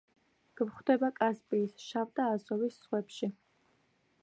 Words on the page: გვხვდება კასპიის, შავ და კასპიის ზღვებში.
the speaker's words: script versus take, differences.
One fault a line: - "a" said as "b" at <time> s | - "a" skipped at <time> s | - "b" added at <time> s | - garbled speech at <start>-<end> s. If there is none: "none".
- "კასპიის" said as "აზოვის" at 2.4 s